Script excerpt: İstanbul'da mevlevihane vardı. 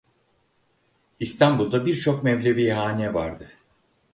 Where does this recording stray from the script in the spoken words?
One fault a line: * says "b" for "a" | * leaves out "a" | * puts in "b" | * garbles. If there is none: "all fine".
* puts in "birçok"